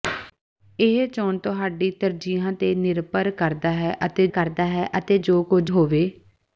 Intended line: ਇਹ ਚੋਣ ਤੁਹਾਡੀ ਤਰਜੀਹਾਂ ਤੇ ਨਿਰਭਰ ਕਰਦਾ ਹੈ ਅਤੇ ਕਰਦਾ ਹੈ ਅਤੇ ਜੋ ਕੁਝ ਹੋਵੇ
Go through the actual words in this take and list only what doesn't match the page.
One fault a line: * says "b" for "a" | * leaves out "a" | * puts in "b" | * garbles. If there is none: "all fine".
all fine